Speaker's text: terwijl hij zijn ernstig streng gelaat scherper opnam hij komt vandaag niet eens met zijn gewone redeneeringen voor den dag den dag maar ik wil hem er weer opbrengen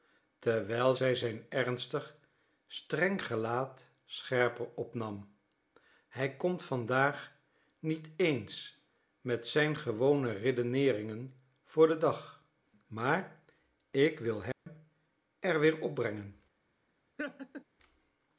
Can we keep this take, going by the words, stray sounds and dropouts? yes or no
no